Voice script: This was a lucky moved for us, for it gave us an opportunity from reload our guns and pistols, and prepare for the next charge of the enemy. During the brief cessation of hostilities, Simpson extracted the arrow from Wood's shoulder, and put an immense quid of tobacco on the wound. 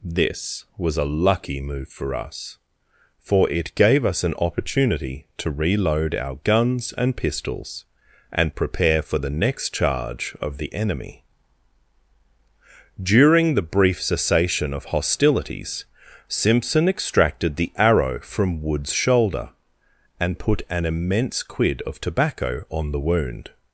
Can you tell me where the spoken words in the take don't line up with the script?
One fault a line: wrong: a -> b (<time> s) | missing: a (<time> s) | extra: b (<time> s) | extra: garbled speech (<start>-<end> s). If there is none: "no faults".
wrong: moved -> move (1.6 s)
wrong: from -> to (5.4 s)